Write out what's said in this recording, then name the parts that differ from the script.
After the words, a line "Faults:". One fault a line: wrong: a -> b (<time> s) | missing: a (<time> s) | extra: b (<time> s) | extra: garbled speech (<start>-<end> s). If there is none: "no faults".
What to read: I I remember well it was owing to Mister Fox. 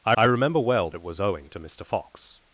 I I remember well it was owing to Mister Fox.
Faults:
no faults